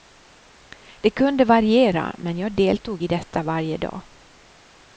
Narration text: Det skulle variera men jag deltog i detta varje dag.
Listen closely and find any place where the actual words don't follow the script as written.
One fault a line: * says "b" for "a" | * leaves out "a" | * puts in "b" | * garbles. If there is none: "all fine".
* says "kunde" for "skulle"